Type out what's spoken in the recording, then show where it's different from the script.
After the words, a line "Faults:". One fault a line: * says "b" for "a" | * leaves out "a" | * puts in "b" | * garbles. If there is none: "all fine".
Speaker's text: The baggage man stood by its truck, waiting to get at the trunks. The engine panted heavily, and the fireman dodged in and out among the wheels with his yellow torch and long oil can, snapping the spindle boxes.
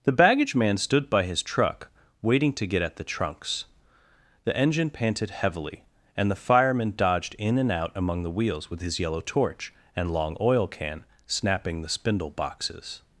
The baggage man stood by his truck, waiting to get at the trunks. The engine panted heavily, and the fireman dodged in and out among the wheels with his yellow torch and long oil can, snapping the spindle boxes.
Faults:
* says "his" for "its"